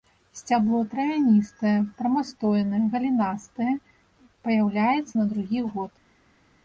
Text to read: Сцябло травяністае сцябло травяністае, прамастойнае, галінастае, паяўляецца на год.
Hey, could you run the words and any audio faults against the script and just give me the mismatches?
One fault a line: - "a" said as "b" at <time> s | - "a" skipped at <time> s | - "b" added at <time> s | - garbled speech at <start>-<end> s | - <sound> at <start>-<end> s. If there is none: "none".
- "сцябло травяністае" skipped at 1.7 s
- "другі" added at 5.3 s